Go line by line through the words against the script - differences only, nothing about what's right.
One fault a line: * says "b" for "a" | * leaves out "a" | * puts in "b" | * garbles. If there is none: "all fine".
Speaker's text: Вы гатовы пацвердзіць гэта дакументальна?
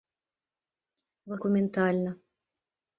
* leaves out "гатовы пацвердзіць гэта"